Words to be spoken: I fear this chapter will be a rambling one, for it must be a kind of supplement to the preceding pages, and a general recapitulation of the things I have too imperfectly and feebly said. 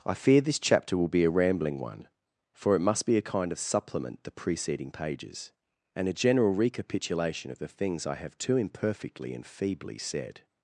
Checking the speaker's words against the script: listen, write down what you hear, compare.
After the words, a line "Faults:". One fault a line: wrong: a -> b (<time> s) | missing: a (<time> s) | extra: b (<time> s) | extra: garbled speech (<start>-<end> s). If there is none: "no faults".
I fear this chapter will be a rambling one, for it must be a kind of supplement the preceding pages, and a general recapitulation of the things I have too imperfectly and feebly said.
Faults:
missing: to (4.2 s)